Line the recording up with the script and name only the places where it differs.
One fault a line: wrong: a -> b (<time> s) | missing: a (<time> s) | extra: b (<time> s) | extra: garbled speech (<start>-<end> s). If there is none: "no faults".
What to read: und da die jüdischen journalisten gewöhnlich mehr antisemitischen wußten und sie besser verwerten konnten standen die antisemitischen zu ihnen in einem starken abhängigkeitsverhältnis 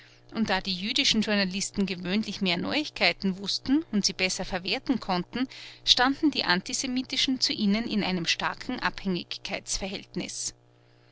wrong: antisemitischen -> neuigkeiten (2.6 s)